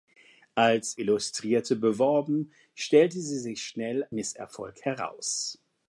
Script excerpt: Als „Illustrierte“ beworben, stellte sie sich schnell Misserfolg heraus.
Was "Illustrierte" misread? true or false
false